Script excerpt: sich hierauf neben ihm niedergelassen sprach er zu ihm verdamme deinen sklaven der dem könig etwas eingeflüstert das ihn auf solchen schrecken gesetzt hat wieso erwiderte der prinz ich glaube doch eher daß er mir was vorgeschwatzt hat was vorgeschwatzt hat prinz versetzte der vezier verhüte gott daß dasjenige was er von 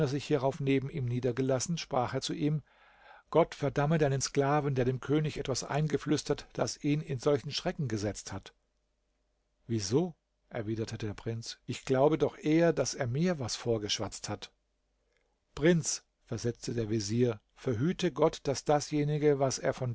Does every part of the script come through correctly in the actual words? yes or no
no